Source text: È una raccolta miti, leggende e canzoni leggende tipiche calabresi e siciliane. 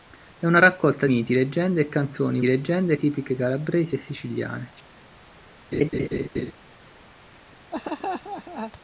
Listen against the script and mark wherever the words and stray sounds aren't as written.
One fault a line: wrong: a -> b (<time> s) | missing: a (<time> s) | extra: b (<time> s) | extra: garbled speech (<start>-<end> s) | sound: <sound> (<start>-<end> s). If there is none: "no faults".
sound: laugh (5.7-6.5 s)
sound: laugh (7.7-8.7 s)